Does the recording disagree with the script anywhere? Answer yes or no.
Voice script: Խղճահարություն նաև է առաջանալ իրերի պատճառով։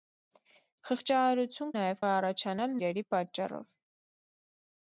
no